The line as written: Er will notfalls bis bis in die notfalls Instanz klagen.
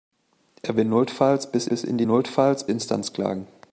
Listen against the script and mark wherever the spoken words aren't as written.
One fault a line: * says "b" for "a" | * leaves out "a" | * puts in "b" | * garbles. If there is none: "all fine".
all fine